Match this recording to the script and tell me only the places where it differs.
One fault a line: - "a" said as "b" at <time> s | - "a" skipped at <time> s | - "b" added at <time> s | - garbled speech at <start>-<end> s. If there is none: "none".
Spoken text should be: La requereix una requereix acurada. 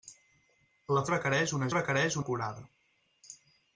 none